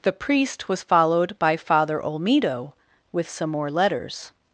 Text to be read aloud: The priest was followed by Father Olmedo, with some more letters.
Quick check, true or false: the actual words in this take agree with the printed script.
true